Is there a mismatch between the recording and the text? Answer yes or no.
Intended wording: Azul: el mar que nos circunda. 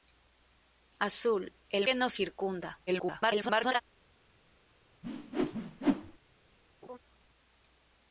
yes